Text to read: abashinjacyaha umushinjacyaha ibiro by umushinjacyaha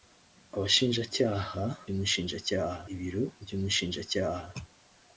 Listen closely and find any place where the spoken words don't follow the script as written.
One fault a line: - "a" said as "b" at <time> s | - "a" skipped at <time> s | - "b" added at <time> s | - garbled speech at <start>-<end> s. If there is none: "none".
none